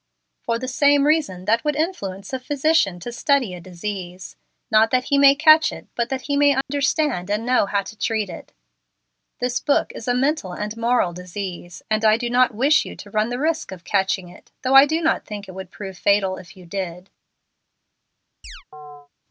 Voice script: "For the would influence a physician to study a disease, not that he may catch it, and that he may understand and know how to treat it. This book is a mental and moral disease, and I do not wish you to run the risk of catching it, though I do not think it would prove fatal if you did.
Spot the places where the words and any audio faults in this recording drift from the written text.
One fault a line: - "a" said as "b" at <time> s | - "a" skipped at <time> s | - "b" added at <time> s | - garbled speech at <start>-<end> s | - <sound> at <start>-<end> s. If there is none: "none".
- "same reason that" added at 0.7 s
- "and" said as "but" at 6.0 s
- dropout at 6.6-6.7 s
- chirp at 18.4-19.1 s